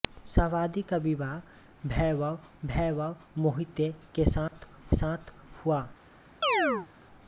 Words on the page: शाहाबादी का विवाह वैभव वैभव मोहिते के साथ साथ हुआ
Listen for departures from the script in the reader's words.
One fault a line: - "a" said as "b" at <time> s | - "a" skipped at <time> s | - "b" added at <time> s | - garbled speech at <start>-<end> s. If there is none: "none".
none